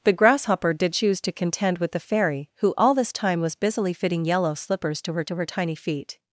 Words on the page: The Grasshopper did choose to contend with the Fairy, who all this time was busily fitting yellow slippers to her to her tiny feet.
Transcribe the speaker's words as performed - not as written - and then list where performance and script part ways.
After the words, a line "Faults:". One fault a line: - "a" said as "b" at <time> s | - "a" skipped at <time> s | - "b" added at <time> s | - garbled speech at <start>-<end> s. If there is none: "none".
The Grasshopper did choose to contend with the Fairy, who all this time was busily fitting yellow slippers to her to her tiny feet.
Faults:
none